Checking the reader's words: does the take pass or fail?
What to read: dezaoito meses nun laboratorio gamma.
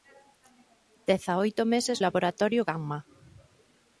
fail